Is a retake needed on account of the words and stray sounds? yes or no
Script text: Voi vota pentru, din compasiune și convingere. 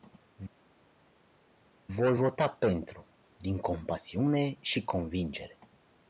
no